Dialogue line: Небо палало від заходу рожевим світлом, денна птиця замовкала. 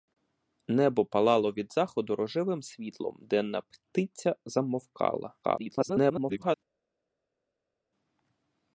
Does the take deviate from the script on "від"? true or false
false